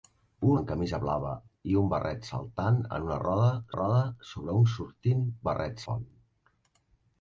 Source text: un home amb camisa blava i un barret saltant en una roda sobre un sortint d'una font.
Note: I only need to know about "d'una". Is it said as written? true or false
false